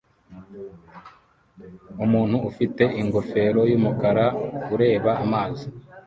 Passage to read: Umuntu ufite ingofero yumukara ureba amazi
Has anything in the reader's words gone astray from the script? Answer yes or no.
no